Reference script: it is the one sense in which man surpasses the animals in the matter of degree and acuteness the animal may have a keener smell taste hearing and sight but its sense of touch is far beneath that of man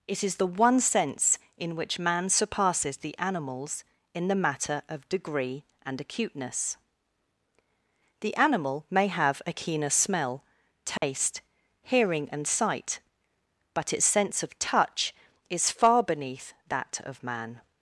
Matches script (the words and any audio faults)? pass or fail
fail